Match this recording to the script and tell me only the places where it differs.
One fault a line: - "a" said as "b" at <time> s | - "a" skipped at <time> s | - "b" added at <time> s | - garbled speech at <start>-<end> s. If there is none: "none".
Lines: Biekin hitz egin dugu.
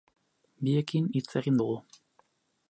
none